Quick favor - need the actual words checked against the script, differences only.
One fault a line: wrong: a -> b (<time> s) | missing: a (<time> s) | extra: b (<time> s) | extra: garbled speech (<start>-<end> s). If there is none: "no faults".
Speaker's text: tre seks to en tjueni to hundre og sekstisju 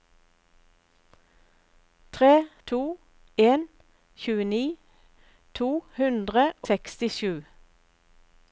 missing: seks (2.3 s)
missing: og (6.5 s)